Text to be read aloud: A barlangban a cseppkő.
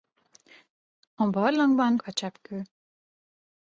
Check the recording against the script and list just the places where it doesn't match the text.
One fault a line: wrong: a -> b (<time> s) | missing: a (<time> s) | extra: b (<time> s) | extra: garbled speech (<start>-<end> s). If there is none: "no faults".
no faults